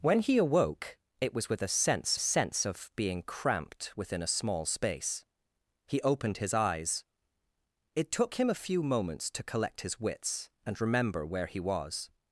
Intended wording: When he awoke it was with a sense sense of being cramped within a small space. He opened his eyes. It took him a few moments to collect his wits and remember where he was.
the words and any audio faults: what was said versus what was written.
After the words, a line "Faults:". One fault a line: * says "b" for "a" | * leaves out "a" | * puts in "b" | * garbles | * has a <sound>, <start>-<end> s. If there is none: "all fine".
When he awoke it was with a sense sense of being cramped within a small space. He opened his eyes. It took him a few moments to collect his wits and remember where he was.
Faults:
all fine